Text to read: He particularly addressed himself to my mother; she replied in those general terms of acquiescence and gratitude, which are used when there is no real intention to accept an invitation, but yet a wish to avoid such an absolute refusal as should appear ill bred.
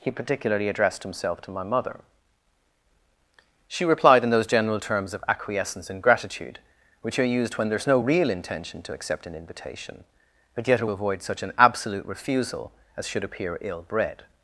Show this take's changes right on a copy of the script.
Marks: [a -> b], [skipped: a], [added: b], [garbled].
He particularly addressed himself to my mother; she replied in those general terms of acquiescence and gratitude, which are used when there is no real intention to accept an invitation, but yet a [skipped: wish to] avoid such an absolute refusal as should appear ill bred.